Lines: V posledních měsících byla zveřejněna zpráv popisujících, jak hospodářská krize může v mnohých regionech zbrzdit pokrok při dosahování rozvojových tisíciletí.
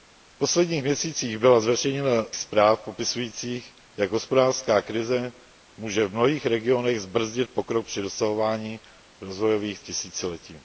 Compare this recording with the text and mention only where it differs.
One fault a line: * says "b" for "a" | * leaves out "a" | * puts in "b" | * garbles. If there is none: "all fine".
all fine